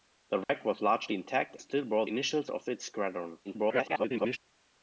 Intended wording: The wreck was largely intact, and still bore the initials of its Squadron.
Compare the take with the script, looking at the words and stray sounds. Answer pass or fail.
fail